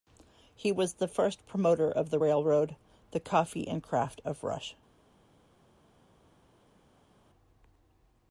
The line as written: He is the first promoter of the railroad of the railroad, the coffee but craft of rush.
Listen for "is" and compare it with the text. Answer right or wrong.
wrong